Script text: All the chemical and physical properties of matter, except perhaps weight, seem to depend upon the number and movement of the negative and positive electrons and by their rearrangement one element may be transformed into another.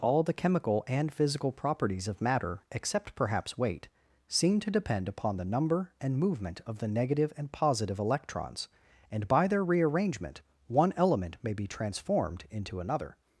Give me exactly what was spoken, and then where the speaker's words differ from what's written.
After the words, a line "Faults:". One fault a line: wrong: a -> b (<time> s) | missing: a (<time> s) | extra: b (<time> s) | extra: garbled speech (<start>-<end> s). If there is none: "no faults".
All the chemical and physical properties of matter, except perhaps weight, seem to depend upon the number and movement of the negative and positive electrons and by their rearrangement one element may be transformed into another.
Faults:
no faults